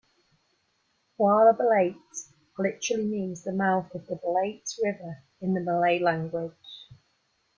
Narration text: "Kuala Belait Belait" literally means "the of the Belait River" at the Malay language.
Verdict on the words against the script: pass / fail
fail